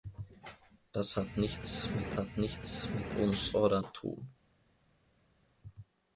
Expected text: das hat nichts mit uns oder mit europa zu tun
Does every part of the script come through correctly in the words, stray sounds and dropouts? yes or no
no